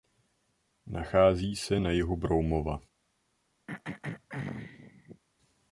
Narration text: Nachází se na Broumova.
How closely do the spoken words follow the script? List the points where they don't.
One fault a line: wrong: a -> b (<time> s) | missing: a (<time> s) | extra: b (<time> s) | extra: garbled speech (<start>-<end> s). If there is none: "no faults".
extra: jihu (1.9 s)